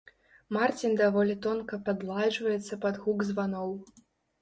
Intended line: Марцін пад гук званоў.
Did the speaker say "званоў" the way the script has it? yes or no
yes